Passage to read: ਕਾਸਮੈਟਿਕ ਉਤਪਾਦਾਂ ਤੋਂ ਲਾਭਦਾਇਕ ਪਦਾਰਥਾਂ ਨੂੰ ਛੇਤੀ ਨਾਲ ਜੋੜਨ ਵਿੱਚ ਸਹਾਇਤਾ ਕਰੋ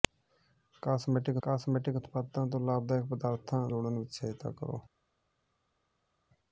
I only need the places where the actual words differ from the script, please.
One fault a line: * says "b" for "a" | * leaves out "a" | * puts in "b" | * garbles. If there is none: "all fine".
* puts in "ਕਾਸਮੈਟਿਕ"
* leaves out "ਨੂੰ ਛੇਤੀ ਨਾਲ"